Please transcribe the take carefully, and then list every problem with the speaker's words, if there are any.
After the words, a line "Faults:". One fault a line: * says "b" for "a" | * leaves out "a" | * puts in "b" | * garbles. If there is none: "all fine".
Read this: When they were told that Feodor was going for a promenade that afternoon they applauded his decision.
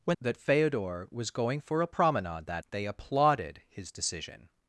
When that Feodor was going for a promenade that they applauded his decision.
Faults:
* leaves out "they were told"
* leaves out "afternoon"